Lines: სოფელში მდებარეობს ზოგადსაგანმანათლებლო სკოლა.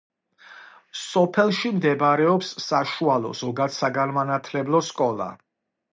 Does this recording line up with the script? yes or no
no